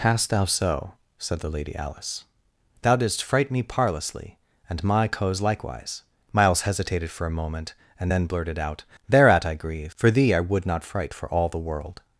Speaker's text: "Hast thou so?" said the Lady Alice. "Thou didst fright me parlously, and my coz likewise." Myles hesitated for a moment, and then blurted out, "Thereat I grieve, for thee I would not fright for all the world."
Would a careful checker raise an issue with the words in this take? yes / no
no